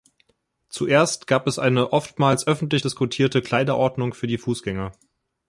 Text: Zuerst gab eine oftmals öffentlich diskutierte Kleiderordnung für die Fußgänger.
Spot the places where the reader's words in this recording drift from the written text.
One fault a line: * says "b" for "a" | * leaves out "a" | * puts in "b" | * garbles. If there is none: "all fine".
* puts in "es"